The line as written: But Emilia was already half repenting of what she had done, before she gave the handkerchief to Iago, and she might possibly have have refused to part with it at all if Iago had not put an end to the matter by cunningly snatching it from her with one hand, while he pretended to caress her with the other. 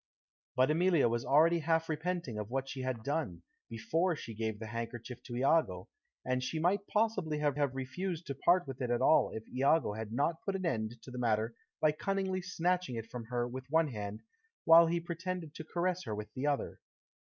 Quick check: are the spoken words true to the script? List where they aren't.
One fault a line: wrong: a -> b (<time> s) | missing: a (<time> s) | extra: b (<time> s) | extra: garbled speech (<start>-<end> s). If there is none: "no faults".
no faults